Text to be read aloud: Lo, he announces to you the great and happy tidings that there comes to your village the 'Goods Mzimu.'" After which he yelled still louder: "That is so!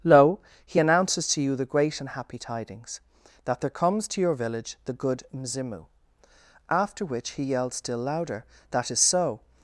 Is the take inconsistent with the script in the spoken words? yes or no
yes